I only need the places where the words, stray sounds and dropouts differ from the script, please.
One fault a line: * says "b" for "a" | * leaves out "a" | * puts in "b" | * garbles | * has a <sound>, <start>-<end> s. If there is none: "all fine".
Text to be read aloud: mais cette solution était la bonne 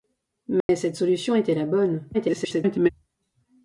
* has a dropout, 0.6-0.7 s
* garbles